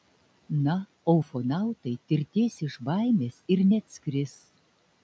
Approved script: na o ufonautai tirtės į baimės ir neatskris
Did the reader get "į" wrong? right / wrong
wrong